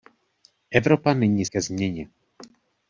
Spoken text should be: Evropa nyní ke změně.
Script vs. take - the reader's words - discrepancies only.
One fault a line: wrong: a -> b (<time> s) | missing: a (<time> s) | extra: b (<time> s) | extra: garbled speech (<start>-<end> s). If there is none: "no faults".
no faults